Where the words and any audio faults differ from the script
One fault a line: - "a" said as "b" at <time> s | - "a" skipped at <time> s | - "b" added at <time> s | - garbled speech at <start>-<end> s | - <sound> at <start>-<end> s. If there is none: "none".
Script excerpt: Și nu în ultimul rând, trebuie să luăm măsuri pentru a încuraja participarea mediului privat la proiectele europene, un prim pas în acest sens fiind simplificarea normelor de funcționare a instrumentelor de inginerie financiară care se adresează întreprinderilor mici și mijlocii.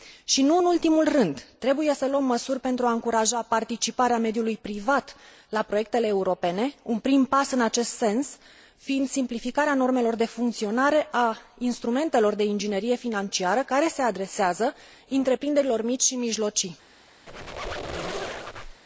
- squeak at 17.3-18.8 s